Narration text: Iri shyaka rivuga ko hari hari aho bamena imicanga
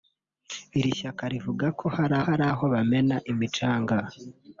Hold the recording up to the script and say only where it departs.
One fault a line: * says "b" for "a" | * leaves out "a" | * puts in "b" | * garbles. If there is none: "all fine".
all fine